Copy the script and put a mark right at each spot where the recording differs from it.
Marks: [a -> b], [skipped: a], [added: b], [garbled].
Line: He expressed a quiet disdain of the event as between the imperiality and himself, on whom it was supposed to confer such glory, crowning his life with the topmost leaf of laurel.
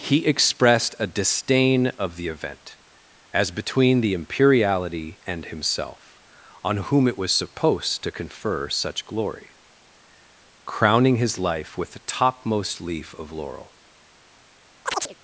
He expressed a [skipped: quiet] disdain of the event as between the imperiality and himself, on whom it was supposed to confer such glory, crowning his life with the topmost leaf of laurel.